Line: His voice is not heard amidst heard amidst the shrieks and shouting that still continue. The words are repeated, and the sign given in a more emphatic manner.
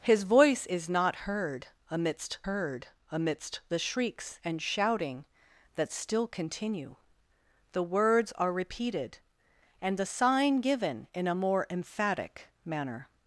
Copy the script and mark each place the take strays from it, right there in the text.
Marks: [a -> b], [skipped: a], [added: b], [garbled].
His voice is not heard amidst heard amidst the shrieks and shouting that still continue. The words are repeated, and the sign given in a more emphatic manner.